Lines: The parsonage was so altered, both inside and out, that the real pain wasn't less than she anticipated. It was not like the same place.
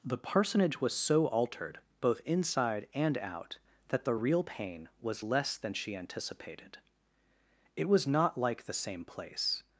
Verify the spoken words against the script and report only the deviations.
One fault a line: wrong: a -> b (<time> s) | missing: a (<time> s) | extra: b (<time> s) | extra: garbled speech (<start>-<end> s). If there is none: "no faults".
wrong: wasn't -> was (5.0 s)